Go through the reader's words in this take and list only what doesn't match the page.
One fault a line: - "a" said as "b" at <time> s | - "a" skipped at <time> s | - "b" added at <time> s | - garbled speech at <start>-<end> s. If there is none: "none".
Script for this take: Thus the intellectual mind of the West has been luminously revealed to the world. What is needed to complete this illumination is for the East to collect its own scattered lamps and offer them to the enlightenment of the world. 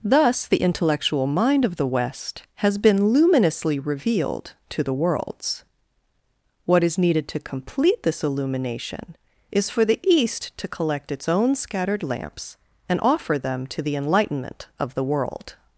- "world" said as "worlds" at 4.9 s